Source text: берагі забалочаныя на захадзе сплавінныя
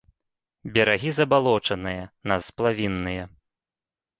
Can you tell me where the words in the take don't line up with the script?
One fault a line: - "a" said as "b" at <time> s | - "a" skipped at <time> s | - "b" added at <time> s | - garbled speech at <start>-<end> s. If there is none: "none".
- "захадзе" skipped at 2.4 s